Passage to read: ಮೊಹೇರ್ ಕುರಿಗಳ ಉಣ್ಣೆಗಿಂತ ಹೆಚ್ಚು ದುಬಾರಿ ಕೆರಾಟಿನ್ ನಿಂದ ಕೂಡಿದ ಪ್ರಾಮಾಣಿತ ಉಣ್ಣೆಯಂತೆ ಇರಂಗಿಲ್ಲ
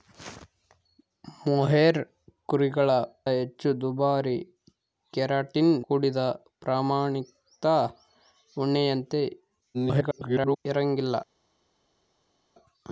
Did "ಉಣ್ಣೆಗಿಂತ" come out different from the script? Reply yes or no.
yes